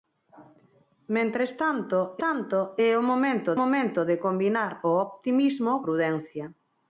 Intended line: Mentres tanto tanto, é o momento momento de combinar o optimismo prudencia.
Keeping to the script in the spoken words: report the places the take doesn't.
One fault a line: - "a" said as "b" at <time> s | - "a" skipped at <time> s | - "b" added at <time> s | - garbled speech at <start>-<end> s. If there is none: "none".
none